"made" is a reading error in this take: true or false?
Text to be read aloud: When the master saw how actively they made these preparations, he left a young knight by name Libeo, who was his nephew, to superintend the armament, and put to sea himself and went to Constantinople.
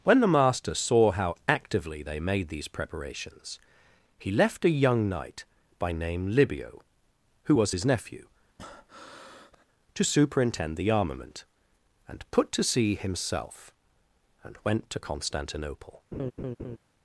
false